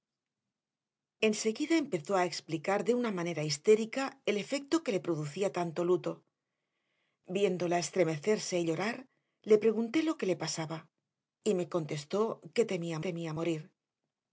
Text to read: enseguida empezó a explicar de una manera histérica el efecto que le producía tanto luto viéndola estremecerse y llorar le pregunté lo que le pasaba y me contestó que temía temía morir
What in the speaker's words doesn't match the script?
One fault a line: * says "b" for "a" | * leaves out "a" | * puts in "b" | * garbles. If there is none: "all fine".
all fine